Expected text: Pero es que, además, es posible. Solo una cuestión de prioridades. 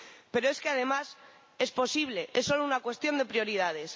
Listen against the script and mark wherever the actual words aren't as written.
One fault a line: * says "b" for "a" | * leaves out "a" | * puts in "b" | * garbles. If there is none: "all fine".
* puts in "Es"